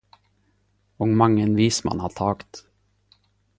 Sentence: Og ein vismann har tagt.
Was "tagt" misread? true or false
false